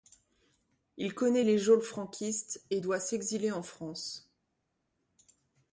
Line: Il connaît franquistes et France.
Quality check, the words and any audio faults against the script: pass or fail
fail